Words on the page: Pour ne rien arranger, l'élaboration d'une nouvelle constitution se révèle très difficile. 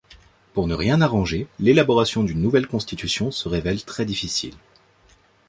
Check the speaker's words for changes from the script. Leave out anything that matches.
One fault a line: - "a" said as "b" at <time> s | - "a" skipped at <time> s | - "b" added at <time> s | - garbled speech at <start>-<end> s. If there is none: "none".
none